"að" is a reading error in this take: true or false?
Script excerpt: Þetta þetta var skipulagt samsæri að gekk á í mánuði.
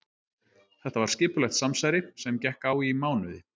true